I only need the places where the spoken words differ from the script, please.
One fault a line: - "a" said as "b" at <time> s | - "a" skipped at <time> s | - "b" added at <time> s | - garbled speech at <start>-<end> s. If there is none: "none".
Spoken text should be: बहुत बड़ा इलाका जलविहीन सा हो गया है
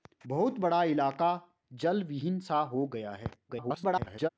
- garbled speech at 3.5-4.3 s